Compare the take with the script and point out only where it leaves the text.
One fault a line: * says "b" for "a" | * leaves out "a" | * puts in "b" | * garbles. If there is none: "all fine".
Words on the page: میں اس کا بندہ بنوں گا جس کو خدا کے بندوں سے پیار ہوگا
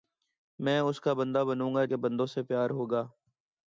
* leaves out "جس کو خدا"